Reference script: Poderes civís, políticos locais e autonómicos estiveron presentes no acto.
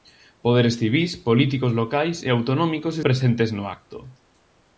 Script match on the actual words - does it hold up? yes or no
no